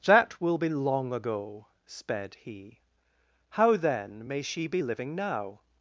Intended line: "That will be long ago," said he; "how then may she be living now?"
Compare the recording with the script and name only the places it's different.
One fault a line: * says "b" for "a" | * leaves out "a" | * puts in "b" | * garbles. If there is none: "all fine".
* says "sped" for "said"